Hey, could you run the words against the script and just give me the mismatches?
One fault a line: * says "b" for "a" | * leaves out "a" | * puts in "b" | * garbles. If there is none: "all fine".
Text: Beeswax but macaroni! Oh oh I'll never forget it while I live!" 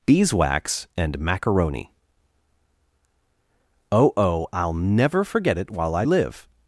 * says "and" for "but"